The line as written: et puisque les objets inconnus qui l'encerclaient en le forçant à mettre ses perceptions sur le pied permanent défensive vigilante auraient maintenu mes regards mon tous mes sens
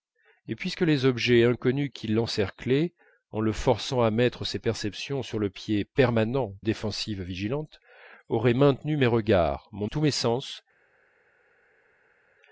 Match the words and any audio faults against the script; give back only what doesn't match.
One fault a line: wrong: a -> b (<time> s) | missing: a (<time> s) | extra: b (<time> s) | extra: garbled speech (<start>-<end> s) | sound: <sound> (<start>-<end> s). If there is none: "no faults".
no faults